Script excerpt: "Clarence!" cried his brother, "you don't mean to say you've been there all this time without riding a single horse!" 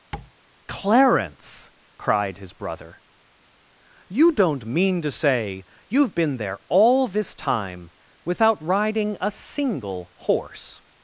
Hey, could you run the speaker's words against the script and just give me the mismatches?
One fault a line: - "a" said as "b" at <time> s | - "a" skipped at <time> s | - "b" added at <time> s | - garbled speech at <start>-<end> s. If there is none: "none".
none